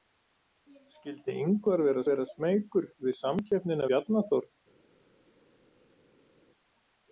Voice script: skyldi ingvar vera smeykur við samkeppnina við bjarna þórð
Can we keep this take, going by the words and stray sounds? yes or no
no